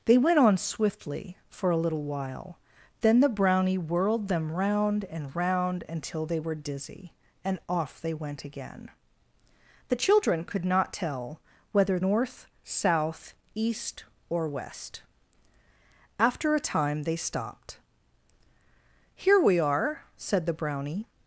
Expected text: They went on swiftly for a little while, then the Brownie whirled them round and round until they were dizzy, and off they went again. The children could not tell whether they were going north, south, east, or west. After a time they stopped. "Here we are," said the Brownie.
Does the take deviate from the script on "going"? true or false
true